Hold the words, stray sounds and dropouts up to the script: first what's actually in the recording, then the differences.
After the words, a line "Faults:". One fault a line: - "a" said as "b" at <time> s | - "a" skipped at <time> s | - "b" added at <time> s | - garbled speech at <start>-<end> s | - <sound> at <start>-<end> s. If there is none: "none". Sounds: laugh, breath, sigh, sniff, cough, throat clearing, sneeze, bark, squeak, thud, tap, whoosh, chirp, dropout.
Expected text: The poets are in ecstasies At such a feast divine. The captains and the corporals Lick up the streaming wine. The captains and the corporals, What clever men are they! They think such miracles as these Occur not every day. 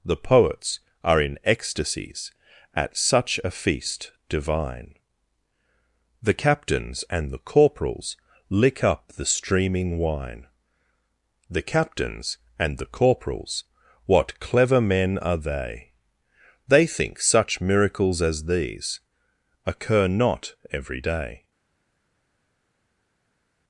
The poets are in ecstasies At such a feast divine. The captains and the corporals Lick up the streaming wine. The captains and the corporals, What clever men are they! They think such miracles as these Occur not every day.
Faults:
none